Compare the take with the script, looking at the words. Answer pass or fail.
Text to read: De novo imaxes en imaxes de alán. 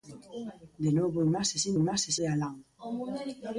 pass